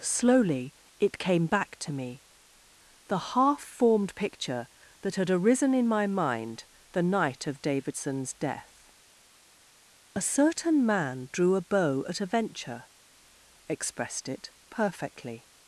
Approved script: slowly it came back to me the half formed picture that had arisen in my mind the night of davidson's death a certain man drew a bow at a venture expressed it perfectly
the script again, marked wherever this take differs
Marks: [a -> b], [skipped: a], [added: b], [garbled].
slowly it came back to me the half formed picture that had arisen in my mind the night of davidson's death a certain man drew a bow at a venture expressed it perfectly